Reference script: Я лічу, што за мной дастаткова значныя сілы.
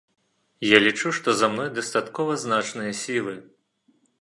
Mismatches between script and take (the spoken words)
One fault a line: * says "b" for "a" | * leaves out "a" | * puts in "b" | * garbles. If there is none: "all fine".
all fine